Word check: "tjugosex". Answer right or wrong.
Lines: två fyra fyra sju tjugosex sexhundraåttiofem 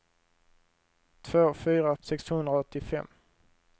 wrong